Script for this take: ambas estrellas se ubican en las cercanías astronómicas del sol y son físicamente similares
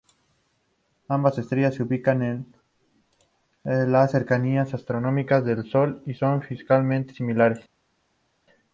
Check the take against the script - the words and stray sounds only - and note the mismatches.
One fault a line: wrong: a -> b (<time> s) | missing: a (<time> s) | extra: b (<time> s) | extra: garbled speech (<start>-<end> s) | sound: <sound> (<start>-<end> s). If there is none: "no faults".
no faults